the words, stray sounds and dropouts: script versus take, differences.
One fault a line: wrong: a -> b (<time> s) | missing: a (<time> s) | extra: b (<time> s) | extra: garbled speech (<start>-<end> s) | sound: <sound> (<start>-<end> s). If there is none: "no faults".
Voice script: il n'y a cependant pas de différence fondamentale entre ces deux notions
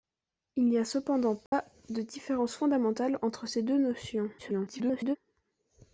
sound: dropout (1.5-1.5 s)
extra: garbled speech (4.4-5.2 s)